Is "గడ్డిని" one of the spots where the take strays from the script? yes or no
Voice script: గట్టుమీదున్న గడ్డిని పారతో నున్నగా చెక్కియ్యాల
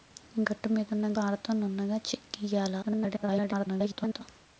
yes